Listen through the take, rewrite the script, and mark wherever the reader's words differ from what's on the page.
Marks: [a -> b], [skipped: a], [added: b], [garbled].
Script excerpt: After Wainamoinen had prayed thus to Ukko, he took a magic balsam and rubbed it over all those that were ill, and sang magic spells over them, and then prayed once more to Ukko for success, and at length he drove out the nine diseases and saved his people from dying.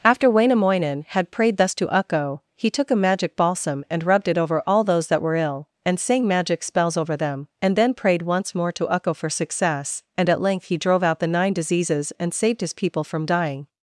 After Wainamoinen had prayed thus to Ukko, he took a magic balsam and rubbed it over all those that were ill, and sang magic spells over them, and then prayed once more to Ukko for success, and at length he drove out the nine diseases and saved his people from dying.